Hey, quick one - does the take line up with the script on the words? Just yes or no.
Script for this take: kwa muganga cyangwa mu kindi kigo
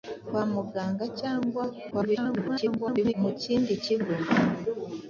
no